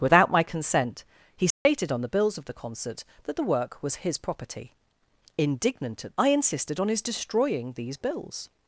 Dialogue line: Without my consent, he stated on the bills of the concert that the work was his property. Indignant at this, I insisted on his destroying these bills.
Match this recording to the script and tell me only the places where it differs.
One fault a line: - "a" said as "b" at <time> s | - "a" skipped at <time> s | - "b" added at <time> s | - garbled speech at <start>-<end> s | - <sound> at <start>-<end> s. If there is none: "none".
- dropout at 1.5-1.7 s
- "this" skipped at 6.2 s